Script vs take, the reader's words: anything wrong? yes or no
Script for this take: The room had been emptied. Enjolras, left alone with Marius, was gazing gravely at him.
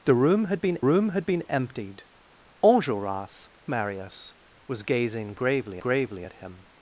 yes